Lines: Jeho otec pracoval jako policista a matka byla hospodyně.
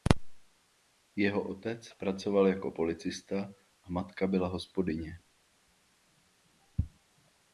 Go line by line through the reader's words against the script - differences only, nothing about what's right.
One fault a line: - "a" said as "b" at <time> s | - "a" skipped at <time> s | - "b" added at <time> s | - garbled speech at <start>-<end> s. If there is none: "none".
none